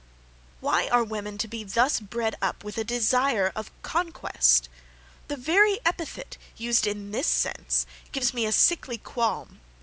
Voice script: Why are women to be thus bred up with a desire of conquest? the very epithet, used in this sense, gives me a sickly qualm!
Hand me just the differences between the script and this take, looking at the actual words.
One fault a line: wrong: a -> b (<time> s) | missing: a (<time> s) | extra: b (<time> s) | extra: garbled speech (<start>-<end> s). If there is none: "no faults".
no faults